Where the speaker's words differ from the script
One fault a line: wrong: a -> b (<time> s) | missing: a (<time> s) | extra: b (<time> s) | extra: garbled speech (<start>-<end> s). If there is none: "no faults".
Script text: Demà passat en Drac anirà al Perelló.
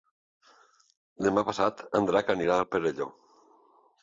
no faults